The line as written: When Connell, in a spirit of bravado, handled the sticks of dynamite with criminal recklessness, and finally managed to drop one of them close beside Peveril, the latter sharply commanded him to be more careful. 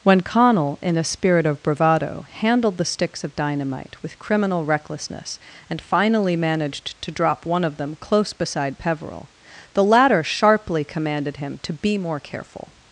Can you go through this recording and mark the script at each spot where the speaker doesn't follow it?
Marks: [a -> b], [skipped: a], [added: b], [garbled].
When Connell, in a spirit of bravado, handled the sticks of dynamite with criminal recklessness, and finally managed to drop one of them close beside Peveril, the latter sharply commanded him to be more careful.